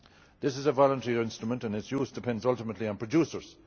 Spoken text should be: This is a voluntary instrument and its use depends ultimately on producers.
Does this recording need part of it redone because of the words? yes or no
no